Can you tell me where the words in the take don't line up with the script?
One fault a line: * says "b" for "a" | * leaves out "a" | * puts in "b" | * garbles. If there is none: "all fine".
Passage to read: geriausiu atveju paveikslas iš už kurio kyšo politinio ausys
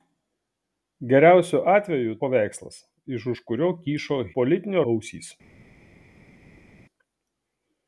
all fine